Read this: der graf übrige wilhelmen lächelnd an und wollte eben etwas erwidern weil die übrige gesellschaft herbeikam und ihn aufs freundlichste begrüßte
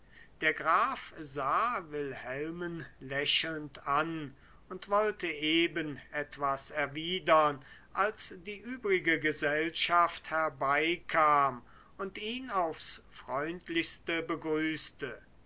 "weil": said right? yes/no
no